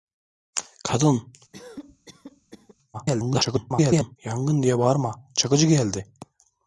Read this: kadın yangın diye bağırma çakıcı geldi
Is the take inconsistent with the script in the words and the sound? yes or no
yes